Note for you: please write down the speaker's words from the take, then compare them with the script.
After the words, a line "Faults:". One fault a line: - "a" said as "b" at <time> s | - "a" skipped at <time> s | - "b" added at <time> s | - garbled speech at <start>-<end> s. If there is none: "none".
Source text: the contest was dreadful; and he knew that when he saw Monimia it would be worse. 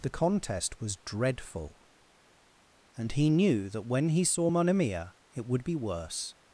the contest was dreadful; and he knew that when he saw Monimia it would be worse.
Faults:
none